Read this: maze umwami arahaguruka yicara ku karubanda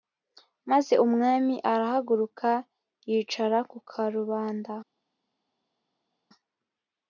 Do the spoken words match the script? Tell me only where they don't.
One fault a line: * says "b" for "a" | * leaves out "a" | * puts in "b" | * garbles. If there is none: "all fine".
all fine